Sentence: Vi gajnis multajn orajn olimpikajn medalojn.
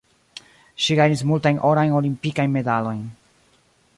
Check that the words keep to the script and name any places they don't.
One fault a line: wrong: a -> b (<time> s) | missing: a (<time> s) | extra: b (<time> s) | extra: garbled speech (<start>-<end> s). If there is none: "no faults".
wrong: Vi -> Ŝi (0.8 s)